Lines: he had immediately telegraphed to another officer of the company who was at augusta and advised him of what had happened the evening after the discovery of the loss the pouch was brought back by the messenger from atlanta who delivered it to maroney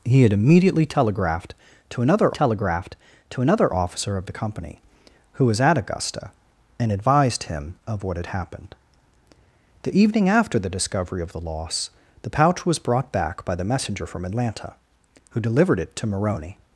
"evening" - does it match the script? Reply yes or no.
yes